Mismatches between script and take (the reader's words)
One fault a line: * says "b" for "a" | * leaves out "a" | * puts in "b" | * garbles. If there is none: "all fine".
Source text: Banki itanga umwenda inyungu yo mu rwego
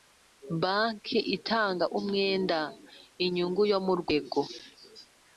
all fine